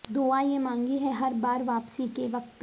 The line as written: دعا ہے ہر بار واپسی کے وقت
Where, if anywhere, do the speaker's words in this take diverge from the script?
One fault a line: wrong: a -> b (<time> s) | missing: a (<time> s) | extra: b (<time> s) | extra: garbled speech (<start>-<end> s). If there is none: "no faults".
extra: یہ مانگی (0.4 s)